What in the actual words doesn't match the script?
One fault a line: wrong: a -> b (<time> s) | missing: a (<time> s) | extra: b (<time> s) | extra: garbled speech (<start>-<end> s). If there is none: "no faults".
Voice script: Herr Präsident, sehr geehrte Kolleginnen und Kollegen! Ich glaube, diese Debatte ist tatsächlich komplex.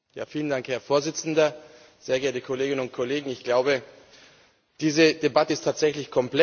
no faults